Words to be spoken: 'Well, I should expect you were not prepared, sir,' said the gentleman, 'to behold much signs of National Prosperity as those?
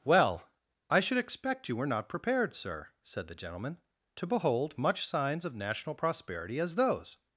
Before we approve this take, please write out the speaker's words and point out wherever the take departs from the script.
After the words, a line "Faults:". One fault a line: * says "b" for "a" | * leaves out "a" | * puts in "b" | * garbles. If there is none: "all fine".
'Well, I should expect you were not prepared, sir,' said the gentleman, 'to behold much signs of National Prosperity as those?
Faults:
all fine